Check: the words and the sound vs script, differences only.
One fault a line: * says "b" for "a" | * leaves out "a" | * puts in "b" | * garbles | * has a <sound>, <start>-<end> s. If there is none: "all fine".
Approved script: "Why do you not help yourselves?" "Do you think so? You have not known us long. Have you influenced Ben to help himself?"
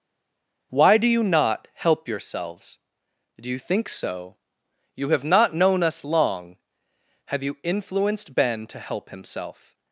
all fine